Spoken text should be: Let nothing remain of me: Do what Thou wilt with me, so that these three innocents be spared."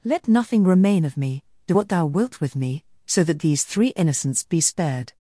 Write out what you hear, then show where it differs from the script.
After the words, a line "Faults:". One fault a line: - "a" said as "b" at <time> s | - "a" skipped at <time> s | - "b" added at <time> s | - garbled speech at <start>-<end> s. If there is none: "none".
Let nothing remain of me: Do what Thou wilt with me, so that these three innocents be spared."
Faults:
none